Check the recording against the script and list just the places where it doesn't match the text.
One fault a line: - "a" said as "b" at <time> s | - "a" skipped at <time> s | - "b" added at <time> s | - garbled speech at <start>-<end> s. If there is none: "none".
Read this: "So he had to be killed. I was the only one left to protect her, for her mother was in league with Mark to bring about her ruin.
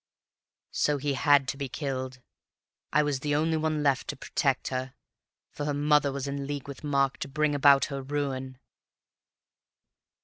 none